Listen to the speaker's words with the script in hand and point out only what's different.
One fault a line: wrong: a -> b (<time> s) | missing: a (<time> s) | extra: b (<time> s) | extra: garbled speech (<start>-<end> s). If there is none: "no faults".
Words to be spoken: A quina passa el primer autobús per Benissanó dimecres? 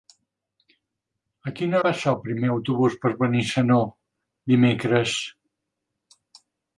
no faults